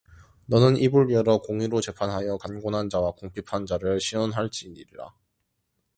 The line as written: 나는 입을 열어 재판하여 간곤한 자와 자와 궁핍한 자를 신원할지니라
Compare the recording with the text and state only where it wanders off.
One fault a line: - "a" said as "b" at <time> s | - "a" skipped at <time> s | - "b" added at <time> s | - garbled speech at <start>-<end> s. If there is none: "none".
- "나는" said as "너는" at 0.5 s
- "공의로" added at 1.4 s
- "자와" skipped at 3.1 s